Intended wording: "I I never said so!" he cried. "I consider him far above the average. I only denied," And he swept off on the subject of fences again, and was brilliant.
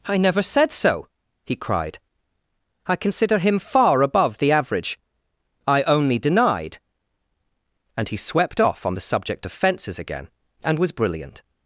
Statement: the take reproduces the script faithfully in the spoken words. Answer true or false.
false